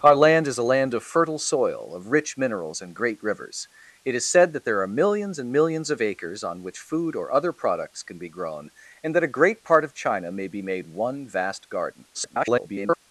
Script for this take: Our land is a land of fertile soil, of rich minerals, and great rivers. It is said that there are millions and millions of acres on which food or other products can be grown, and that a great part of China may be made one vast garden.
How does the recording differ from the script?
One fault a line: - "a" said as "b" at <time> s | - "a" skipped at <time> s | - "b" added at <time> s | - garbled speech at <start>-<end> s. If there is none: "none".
- garbled speech at 12.1-13.0 s